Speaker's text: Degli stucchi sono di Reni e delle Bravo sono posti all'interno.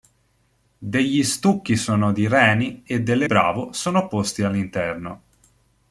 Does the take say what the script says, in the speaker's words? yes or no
yes